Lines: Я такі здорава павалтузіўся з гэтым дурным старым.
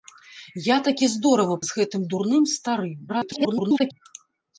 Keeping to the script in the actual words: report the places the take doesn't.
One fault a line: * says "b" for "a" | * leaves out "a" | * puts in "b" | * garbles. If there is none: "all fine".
* leaves out "павалтузіўся"
* garbles